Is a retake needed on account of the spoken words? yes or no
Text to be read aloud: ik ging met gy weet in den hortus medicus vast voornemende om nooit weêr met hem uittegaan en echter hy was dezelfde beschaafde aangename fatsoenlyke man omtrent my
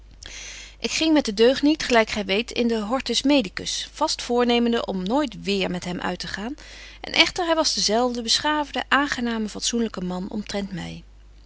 yes